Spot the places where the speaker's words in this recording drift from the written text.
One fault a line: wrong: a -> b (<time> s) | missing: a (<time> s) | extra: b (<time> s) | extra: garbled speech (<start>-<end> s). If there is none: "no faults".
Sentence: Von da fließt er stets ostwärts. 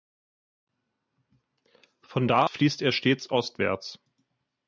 no faults